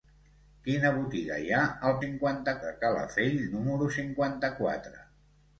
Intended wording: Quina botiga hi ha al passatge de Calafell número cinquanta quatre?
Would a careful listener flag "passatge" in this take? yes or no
yes